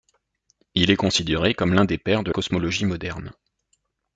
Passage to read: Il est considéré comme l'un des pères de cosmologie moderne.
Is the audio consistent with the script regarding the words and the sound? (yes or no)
yes